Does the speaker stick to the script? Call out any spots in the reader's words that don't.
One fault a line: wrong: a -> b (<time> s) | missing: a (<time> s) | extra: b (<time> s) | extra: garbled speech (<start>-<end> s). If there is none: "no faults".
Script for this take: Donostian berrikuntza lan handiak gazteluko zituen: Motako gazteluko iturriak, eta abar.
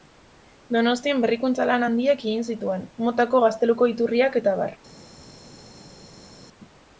wrong: gazteluko -> egin (2.3 s)